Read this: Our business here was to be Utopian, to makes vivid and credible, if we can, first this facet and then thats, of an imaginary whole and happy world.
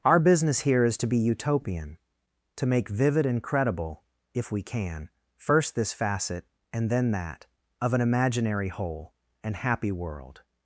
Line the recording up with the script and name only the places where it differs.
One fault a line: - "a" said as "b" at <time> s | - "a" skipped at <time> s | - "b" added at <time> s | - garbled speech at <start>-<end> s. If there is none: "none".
- "was" said as "is" at 0.8 s
- "makes" said as "make" at 2.6 s
- "thats" said as "that" at 7.1 s